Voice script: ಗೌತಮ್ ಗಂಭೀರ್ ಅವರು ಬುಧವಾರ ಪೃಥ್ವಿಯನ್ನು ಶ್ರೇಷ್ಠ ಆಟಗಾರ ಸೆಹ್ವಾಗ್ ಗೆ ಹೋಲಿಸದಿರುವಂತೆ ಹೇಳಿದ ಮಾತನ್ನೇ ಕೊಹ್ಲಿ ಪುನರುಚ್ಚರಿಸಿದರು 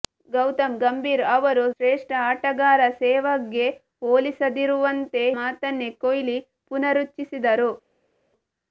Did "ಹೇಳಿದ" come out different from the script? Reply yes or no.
yes